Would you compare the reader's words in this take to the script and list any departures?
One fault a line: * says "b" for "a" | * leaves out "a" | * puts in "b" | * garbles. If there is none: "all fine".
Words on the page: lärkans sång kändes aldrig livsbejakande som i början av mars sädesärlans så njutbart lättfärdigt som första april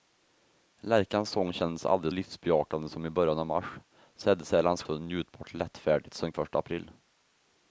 all fine